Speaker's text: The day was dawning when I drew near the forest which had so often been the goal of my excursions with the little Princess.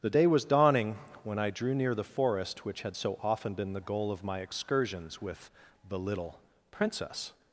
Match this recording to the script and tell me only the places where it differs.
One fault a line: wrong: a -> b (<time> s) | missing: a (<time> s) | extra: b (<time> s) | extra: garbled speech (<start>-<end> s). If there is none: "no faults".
no faults